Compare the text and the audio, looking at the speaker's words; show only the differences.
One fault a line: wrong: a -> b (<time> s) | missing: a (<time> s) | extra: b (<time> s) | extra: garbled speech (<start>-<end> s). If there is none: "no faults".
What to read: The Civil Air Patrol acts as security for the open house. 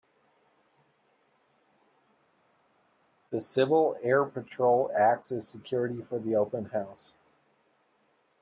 no faults